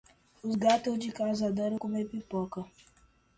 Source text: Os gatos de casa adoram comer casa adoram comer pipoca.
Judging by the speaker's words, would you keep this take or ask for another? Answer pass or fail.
fail